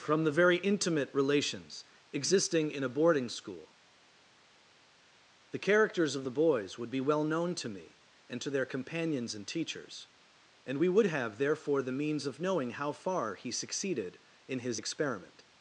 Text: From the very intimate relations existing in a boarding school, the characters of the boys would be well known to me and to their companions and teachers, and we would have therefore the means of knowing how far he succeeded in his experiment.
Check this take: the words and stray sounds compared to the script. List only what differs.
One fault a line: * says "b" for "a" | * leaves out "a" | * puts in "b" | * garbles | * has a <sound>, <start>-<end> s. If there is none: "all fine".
all fine